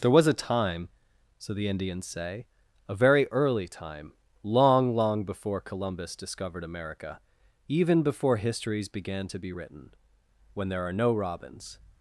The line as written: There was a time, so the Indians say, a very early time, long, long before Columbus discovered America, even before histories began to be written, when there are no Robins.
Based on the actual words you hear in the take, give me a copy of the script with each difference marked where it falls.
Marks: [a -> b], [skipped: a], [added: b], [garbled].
There was a time, so the Indians say, a very early time, long, long before Columbus discovered America, even before histories began to be written, when there are no Robins.